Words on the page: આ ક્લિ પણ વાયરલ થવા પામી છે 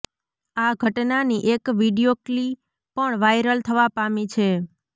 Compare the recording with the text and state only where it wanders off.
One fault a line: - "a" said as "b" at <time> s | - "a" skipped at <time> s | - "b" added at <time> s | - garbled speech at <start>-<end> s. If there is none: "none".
- "ઘટનાની એક વીડિયો" added at 0.8 s